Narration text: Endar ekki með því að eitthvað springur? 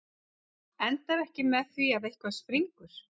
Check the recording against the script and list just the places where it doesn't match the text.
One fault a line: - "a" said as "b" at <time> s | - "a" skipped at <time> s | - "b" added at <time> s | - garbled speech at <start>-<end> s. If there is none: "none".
none